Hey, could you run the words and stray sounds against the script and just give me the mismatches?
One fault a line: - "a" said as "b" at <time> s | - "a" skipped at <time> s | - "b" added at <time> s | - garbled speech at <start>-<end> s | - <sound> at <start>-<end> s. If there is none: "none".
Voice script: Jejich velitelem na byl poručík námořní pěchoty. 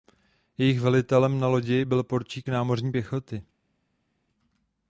- "lodi" added at 1.5 s